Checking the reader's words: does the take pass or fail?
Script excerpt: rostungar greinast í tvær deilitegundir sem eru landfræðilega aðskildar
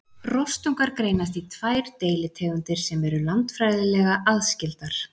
pass